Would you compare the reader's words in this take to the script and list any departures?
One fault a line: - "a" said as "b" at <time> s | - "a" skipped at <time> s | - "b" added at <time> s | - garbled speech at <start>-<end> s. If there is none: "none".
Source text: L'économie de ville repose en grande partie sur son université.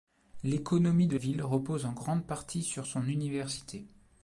none